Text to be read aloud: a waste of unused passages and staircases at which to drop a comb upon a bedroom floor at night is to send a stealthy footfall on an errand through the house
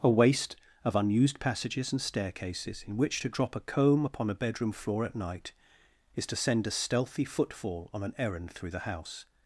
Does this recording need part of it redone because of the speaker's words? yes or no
yes